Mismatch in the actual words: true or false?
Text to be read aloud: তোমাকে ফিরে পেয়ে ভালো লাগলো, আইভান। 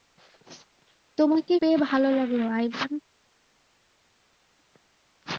true